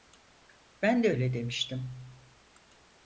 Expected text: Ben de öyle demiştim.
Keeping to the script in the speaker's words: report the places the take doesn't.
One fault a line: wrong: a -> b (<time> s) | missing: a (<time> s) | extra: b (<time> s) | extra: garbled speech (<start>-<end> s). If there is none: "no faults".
no faults